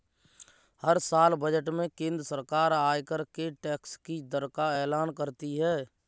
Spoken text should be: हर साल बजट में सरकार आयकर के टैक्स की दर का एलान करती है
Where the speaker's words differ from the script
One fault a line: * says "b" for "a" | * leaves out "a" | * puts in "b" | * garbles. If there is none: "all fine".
* puts in "केंद्र"